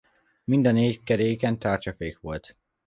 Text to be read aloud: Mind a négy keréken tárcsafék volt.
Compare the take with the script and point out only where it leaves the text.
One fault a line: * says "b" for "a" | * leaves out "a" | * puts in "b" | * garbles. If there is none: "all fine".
all fine